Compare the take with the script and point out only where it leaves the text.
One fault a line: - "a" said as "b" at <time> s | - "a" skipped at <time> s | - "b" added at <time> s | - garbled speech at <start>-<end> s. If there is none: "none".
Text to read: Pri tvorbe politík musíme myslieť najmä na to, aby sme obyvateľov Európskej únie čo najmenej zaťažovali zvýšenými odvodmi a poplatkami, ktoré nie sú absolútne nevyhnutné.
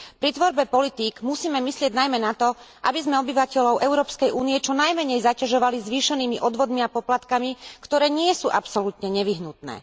none